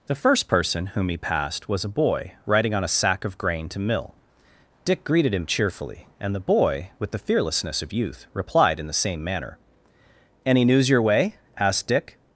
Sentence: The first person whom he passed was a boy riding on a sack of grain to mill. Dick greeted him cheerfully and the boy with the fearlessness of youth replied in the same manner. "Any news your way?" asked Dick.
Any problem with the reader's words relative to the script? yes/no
no